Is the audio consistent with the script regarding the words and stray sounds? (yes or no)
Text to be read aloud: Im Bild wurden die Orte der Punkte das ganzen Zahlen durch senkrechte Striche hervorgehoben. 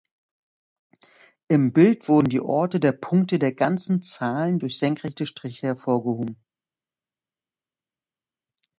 no